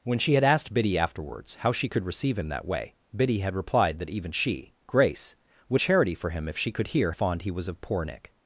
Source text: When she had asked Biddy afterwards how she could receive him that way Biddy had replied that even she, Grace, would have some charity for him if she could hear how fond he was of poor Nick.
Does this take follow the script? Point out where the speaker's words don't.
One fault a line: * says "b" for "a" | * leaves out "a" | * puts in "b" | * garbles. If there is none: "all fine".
* leaves out "have some"
* leaves out "how"